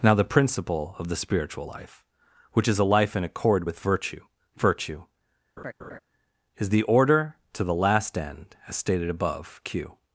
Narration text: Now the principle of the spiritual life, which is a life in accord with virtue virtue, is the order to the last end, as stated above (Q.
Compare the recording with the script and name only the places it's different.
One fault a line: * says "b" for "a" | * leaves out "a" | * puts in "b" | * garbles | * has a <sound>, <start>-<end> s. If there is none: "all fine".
* has a laugh, 5.6-6.0 s